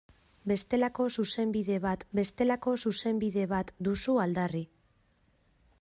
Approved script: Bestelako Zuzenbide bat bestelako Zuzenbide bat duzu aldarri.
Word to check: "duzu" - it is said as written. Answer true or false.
true